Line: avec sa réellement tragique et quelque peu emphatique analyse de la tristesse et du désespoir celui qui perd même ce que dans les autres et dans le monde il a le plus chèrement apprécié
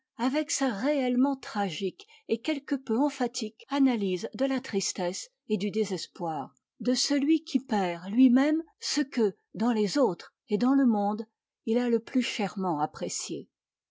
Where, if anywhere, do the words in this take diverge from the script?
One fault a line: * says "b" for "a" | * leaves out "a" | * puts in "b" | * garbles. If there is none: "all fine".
* puts in "de"
* puts in "lui"